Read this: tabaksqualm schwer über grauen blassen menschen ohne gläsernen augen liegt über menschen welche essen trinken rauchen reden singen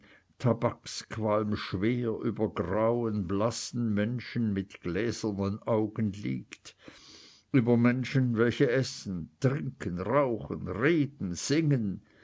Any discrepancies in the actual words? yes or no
yes